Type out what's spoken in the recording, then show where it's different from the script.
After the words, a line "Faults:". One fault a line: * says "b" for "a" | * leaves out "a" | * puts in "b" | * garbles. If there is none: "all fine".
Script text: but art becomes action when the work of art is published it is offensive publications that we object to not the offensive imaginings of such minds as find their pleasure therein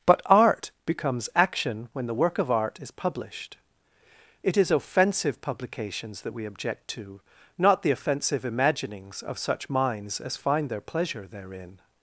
but art becomes action when the work of art is published it is offensive publications that we object to not the offensive imaginings of such minds as find their pleasure therein
Faults:
all fine